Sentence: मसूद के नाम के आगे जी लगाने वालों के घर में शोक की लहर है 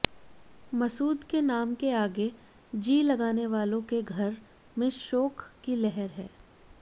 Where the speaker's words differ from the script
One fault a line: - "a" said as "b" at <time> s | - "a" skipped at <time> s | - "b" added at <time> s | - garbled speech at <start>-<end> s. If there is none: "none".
none